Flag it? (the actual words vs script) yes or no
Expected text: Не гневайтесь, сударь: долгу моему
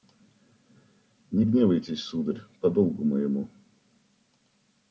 yes